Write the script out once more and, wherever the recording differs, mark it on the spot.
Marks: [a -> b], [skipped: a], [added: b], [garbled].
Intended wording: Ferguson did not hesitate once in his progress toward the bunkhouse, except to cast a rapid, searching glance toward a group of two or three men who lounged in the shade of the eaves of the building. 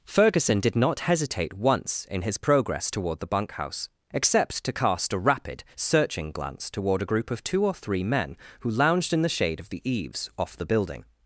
Ferguson did not hesitate once in his progress toward the bunkhouse, except to cast a rapid, searching glance toward a group of two or three men who lounged in the shade of the eaves [of -> off] the building.